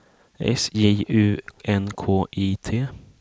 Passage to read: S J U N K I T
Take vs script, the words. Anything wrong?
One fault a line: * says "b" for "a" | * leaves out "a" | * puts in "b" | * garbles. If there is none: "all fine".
all fine